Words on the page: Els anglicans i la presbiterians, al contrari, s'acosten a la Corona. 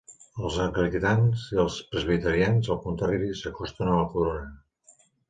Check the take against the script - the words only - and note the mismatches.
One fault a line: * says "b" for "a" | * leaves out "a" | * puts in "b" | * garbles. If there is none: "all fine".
* says "els" for "la"